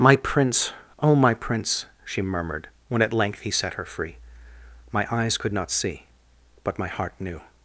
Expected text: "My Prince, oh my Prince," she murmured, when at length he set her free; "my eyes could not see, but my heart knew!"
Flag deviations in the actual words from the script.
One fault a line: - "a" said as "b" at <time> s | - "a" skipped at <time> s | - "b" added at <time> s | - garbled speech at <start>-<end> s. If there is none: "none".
none